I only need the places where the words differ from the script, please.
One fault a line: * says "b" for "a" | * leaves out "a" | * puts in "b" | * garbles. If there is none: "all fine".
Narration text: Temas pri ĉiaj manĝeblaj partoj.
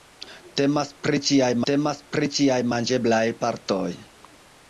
* puts in "temas pri ĉiaj"